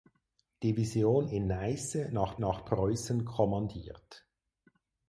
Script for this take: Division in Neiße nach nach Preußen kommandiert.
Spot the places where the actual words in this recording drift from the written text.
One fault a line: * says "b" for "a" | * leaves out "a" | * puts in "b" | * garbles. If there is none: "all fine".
all fine